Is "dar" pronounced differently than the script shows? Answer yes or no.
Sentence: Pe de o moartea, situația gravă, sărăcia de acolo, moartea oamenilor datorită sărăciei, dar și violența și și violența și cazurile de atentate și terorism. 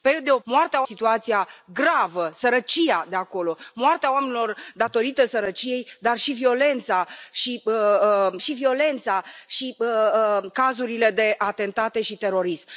no